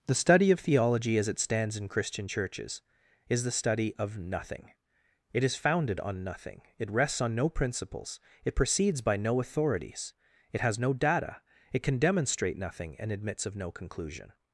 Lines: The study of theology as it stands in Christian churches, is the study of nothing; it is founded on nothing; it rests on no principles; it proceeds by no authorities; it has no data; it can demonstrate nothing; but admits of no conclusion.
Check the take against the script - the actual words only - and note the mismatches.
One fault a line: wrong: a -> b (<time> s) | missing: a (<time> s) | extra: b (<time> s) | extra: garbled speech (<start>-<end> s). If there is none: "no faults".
wrong: but -> and (13.0 s)